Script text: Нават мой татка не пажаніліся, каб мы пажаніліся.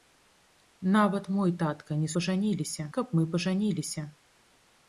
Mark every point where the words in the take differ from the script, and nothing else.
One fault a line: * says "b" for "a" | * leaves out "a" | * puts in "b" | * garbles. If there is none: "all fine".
all fine